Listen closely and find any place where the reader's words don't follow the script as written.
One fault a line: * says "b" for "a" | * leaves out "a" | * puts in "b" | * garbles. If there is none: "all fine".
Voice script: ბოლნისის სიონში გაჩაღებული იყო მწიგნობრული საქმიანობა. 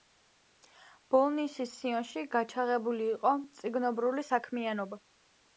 all fine